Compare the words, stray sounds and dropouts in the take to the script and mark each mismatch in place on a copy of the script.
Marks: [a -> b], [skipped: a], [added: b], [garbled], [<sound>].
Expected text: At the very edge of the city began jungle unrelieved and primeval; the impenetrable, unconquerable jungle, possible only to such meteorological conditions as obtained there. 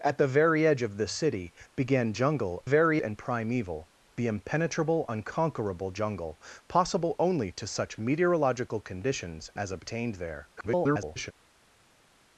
At the very edge of the city began jungle [unrelieved -> very] and primeval; the impenetrable, unconquerable jungle, possible only to such meteorological conditions as obtained there. [garbled]